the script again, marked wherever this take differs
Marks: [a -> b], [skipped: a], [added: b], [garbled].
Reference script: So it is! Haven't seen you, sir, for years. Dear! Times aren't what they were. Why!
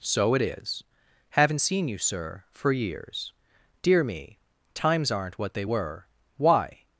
So it is! Haven't seen you, sir, for years. Dear! [added: me] Times aren't what they were. Why!